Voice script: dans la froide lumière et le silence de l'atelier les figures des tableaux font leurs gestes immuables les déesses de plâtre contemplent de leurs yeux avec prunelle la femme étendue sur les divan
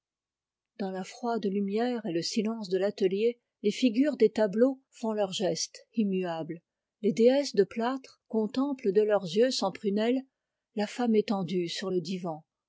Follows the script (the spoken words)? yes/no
no